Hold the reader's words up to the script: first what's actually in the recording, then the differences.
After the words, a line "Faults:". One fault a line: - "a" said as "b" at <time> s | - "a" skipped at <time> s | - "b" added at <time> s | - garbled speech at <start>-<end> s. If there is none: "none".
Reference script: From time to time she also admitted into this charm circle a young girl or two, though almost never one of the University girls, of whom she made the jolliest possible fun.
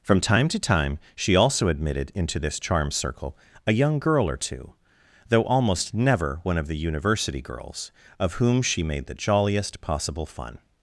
From time to time she also admitted into this charm circle a young girl or two, though almost never one of the University girls, of whom she made the jolliest possible fun.
Faults:
none